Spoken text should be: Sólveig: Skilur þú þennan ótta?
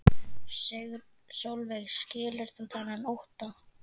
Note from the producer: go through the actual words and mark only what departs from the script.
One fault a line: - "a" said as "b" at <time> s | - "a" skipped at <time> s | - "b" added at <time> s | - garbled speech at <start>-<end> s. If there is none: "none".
none